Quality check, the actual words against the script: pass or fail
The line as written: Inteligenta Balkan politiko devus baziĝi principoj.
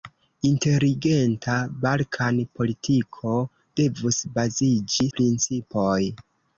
pass